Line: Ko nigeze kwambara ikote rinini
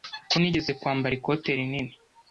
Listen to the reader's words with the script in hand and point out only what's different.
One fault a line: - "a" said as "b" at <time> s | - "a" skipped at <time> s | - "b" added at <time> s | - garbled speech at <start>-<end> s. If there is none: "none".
none